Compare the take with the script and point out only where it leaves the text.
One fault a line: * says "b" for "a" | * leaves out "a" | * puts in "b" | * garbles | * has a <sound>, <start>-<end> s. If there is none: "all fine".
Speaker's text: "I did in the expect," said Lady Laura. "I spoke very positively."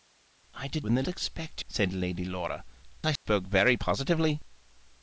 * has a dropout, 3.2-3.3 s